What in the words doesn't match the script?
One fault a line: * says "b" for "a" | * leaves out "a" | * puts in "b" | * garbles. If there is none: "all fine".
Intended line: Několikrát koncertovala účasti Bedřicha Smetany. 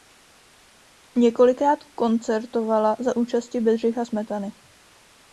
* puts in "za"